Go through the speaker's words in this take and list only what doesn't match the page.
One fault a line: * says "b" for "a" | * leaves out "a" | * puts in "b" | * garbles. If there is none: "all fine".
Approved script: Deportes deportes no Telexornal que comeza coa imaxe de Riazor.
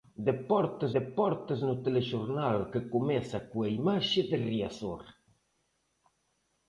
all fine